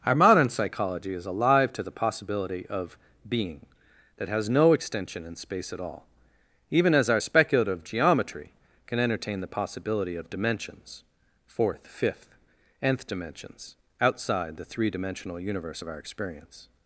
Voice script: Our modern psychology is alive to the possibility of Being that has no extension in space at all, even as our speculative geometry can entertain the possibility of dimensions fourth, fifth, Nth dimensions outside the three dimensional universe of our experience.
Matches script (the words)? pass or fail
pass